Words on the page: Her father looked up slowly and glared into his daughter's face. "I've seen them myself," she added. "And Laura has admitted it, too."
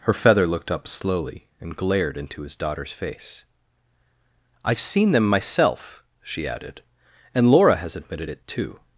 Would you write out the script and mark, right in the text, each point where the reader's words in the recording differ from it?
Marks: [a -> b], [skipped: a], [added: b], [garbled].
Her [father -> feather] looked up slowly and glared into his daughter's face. "I've seen them myself," she added. "And Laura has admitted it, too."